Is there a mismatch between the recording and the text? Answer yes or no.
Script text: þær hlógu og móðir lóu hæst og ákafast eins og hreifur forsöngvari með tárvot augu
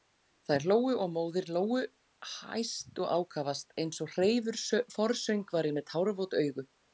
no